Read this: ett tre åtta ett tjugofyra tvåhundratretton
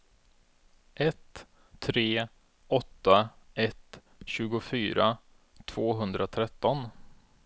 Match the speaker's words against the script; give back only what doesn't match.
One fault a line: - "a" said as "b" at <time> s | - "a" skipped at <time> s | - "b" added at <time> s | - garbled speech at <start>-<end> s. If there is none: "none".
none